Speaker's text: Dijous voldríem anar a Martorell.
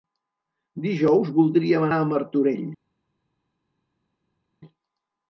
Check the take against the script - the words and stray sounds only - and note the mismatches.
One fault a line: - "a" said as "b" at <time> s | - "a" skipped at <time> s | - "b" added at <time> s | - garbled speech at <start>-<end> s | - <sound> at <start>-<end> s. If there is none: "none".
- "anar" skipped at 1.9 s